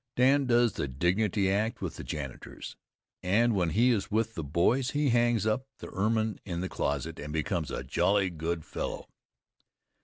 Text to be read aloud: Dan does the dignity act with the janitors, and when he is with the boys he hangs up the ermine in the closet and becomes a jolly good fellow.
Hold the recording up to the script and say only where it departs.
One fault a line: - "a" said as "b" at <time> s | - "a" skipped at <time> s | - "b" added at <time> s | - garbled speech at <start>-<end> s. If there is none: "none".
none